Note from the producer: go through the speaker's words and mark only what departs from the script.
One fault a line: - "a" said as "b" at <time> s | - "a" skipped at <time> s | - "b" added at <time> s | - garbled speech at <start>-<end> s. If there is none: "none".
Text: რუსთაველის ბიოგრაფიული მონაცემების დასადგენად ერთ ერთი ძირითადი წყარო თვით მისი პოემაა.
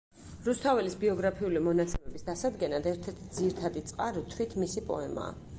none